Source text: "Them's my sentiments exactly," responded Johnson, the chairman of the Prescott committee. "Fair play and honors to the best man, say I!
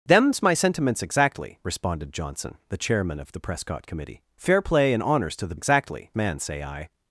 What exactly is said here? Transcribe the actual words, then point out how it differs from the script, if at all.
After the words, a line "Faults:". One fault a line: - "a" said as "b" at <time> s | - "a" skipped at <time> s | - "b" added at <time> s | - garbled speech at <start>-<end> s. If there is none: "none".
"Them's my sentiments exactly," responded Johnson, the chairman of the Prescott committee. "Fair play and honors to the exactly man, say I!
Faults:
- "best" said as "exactly" at 5.5 s